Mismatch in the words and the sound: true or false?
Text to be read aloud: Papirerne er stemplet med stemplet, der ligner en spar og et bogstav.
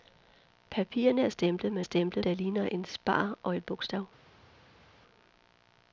false